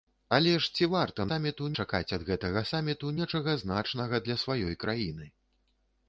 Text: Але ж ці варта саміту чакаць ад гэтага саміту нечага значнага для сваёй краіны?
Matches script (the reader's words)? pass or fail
pass